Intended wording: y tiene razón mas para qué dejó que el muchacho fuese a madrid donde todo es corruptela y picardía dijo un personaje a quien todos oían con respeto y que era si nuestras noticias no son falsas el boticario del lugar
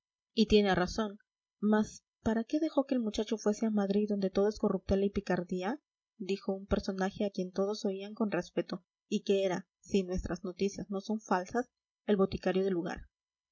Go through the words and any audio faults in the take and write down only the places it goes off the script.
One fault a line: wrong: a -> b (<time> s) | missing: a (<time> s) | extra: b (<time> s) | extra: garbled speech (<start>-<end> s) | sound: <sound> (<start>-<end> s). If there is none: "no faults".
no faults